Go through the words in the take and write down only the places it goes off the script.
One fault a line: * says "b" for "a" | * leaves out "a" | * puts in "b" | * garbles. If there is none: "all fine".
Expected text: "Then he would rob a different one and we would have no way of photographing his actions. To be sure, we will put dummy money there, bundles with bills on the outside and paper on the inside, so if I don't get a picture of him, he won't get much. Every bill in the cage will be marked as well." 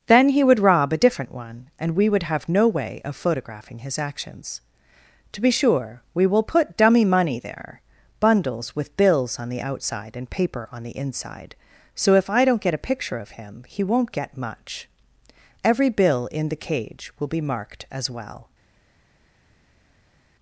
all fine